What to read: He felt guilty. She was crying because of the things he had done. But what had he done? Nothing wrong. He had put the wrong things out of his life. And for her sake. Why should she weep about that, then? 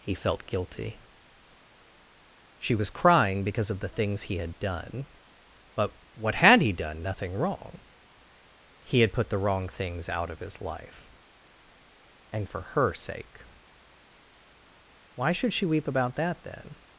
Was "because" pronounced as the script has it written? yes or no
yes